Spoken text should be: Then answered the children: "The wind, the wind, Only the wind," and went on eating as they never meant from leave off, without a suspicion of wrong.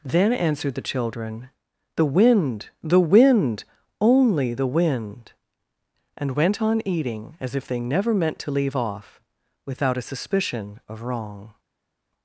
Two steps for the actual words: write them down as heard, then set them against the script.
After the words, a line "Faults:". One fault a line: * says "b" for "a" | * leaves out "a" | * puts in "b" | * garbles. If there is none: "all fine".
Then answered the children: "The wind, the wind, Only the wind," and went on eating as if they never meant to leave off, without a suspicion of wrong.
Faults:
* puts in "if"
* says "to" for "from"